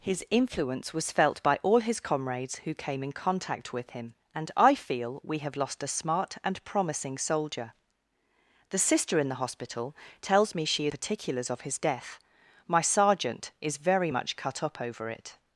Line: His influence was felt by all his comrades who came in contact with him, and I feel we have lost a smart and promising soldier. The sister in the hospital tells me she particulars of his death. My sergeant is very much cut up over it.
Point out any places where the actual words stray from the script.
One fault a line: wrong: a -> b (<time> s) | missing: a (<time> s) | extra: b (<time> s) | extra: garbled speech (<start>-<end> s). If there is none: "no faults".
no faults